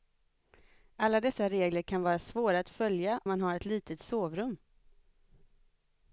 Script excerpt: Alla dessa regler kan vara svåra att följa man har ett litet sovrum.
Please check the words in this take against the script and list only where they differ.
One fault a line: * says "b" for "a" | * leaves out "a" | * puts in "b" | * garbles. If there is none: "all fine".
all fine